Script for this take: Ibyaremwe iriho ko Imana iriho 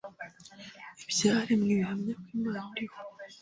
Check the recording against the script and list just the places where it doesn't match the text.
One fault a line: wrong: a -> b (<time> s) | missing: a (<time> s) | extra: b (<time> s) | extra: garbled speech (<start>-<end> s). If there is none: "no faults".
wrong: iriho -> bihamya (1.8 s)